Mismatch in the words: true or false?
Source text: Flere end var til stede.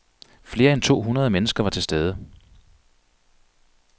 true